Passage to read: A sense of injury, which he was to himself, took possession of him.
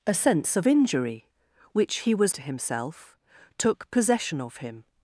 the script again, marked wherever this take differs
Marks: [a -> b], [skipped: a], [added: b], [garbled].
A sense of injury, which he was to himself, took possession of him.